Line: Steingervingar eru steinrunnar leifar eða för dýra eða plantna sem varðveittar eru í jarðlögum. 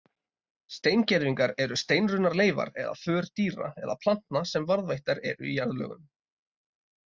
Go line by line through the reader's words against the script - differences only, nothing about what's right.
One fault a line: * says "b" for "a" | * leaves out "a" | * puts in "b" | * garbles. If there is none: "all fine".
all fine